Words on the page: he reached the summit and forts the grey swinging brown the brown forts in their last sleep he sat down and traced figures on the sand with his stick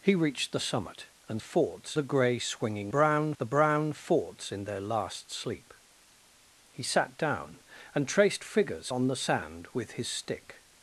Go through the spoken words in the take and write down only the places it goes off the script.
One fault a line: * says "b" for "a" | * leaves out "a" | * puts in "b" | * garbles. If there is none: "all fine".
all fine